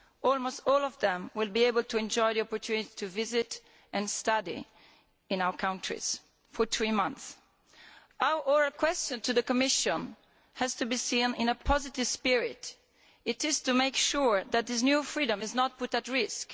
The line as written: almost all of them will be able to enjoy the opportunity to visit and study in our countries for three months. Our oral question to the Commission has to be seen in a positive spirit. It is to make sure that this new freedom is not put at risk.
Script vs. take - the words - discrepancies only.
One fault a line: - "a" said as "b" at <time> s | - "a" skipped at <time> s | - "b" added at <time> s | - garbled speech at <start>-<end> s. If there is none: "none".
none